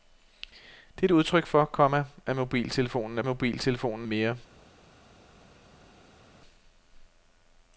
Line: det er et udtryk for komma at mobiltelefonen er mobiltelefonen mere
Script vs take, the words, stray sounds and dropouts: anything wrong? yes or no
no